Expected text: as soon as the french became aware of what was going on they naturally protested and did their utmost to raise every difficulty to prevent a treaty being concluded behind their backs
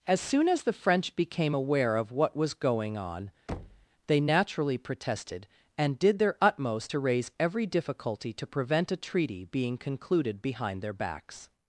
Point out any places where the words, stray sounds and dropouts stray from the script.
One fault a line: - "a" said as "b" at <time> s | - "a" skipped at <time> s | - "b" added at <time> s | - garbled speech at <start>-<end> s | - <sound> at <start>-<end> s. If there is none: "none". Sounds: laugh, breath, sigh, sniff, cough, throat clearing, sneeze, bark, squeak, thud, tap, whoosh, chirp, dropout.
- thud at 3.5-3.9 s